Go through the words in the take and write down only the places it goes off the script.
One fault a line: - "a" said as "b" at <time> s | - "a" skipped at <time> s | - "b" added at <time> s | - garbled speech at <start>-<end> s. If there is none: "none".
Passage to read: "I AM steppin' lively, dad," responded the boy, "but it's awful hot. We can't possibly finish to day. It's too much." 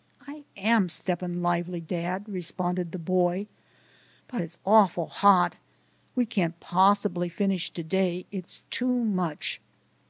none